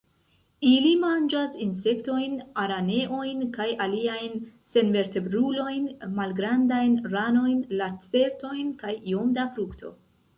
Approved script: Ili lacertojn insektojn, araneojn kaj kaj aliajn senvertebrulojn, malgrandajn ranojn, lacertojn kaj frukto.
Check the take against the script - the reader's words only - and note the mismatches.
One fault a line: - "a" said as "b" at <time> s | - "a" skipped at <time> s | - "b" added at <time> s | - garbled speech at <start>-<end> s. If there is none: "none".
- "lacertojn" said as "manĝas" at 1.0 s
- "kaj" skipped at 3.7 s
- "iom da" added at 9.1 s